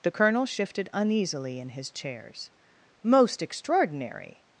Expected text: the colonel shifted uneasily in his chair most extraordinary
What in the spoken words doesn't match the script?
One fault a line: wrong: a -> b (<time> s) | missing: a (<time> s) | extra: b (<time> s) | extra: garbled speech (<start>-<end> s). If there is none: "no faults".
wrong: chair -> chairs (1.9 s)